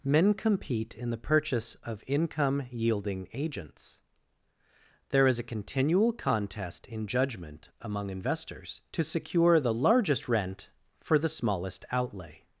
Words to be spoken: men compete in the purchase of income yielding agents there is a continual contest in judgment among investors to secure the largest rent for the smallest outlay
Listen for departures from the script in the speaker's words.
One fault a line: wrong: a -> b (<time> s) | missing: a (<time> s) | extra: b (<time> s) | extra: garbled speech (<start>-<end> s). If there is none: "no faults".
no faults